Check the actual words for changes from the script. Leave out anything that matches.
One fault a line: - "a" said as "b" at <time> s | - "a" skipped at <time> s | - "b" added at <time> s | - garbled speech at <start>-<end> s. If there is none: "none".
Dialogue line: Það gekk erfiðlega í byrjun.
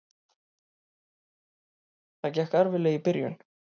none